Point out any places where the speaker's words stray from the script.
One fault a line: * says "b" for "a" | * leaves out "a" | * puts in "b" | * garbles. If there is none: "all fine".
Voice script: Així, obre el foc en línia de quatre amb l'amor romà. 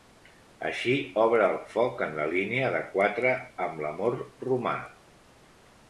* puts in "la"